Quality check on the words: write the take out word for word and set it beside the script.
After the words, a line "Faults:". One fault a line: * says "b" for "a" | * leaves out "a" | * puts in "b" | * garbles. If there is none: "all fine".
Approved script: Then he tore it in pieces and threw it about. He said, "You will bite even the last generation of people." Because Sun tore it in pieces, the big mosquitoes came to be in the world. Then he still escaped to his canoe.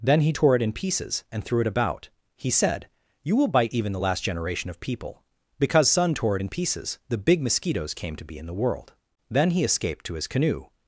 Then he tore it in pieces and threw it about. He said, "You will bite even the last generation of people." Because Sun tore it in pieces, the big mosquitoes came to be in the world. Then he escaped to his canoe.
Faults:
* leaves out "still"